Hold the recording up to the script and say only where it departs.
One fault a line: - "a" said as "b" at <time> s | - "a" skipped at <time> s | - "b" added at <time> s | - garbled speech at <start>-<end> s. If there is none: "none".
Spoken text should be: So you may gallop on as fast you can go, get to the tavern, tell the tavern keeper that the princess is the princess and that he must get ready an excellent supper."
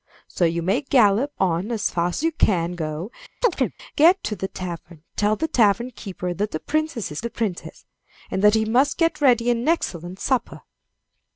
none